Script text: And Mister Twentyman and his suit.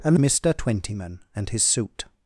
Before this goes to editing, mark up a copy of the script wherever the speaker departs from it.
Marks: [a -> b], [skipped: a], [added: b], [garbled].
And Mister Twentyman and his suit.